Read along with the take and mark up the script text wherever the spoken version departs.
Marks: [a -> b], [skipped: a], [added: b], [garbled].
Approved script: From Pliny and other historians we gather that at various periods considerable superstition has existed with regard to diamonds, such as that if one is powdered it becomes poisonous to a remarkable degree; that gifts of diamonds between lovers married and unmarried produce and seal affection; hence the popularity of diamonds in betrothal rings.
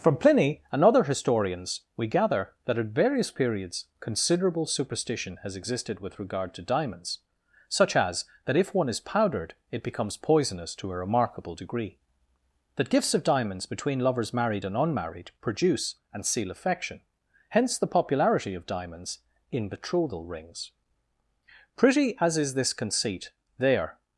From Pliny and other historians we gather that at various periods considerable superstition has existed with regard to diamonds, such as that if one is powdered it becomes poisonous to a remarkable degree; that gifts of diamonds between lovers married and unmarried produce and seal affection; hence the popularity of diamonds in betrothal rings. [added: Pretty as is this conceit there]